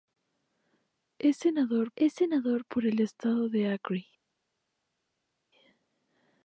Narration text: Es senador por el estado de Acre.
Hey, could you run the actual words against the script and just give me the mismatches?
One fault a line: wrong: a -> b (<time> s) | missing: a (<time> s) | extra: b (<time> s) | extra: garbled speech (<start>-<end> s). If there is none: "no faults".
extra: es senador (2.0 s)